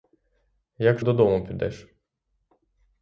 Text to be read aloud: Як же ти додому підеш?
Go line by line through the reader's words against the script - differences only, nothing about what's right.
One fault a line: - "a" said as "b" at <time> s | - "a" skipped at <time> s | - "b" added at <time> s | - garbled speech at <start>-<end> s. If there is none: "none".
- "же ти" skipped at 1.0 s